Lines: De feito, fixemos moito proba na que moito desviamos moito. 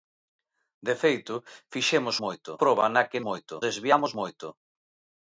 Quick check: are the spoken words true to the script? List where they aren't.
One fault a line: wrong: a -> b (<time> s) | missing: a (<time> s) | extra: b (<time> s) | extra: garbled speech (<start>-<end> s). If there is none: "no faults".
no faults